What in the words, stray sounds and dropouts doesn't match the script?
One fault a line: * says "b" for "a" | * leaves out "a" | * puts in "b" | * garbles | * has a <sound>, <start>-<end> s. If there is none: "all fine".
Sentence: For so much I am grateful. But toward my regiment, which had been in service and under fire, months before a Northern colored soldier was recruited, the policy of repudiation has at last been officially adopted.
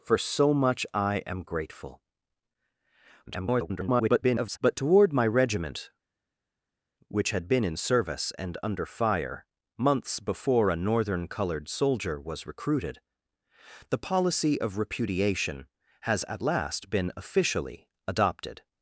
* garbles